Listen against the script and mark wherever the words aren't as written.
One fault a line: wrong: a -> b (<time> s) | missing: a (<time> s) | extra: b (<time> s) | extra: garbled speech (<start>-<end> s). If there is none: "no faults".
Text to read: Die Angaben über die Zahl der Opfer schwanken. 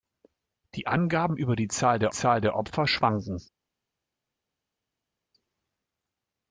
extra: Zahl der (2.1 s)